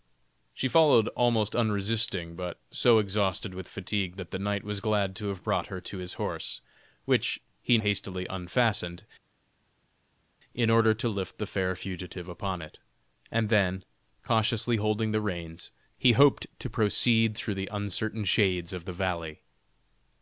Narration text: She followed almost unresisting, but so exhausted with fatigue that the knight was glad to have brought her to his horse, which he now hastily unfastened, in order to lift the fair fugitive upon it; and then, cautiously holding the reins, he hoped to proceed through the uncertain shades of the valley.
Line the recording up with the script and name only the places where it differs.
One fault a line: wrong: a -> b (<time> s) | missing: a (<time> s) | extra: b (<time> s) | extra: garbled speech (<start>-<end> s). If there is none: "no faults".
missing: now (7.8 s)